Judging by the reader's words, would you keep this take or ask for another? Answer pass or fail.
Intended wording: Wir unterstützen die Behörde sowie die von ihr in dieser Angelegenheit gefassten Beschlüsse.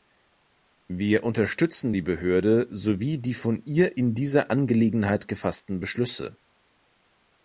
pass